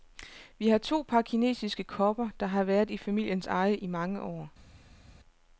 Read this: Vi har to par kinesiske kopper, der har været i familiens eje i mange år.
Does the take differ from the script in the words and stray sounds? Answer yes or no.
no